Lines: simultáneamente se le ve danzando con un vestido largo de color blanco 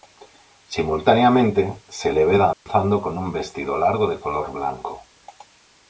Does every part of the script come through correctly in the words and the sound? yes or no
no